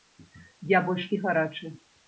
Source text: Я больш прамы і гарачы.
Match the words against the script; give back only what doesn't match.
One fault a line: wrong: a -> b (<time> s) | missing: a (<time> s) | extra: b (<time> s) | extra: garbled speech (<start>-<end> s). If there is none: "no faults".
missing: прамы (1.1 s)